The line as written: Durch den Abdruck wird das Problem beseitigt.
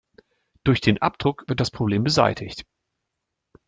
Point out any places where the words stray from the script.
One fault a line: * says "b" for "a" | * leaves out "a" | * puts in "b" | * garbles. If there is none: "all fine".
all fine